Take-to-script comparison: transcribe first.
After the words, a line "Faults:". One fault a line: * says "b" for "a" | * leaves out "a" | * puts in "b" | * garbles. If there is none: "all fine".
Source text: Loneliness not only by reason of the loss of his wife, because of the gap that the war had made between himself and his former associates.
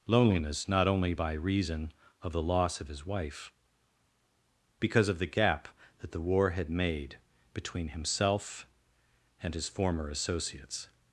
Loneliness not only by reason of the loss of his wife, because of the gap that the war had made between himself and his former associates.
Faults:
all fine